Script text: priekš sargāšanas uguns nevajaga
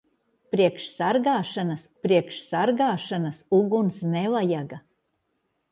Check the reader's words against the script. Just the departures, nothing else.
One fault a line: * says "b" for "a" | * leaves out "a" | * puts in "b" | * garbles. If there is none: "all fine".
* puts in "priekš sargāšanas"